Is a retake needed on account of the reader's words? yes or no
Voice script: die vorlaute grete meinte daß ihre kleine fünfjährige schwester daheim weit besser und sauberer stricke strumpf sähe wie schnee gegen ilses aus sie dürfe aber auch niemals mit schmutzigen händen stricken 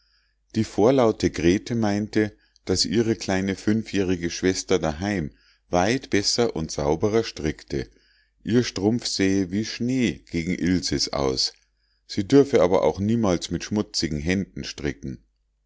yes